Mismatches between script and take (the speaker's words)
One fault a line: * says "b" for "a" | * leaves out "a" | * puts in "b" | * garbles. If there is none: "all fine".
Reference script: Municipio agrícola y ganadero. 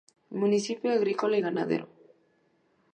all fine